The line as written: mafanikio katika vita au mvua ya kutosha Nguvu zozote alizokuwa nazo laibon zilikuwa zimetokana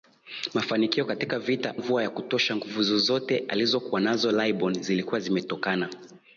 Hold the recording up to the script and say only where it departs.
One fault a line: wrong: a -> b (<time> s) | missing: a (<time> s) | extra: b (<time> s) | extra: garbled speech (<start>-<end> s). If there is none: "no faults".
missing: au (1.8 s)